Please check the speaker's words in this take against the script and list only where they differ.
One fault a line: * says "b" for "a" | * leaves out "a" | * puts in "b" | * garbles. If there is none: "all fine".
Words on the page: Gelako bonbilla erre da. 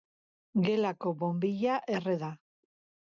all fine